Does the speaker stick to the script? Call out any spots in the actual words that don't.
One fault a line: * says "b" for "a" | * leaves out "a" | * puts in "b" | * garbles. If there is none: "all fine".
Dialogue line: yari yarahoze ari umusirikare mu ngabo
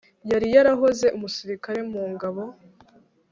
* leaves out "ari"